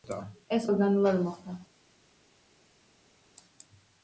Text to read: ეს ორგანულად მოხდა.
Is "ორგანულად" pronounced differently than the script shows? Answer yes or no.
no